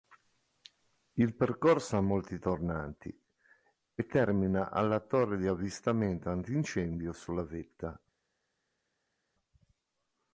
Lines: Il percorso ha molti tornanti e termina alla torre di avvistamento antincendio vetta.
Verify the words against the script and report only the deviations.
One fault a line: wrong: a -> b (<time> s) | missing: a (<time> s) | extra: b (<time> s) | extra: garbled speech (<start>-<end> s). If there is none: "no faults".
extra: sulla (7.1 s)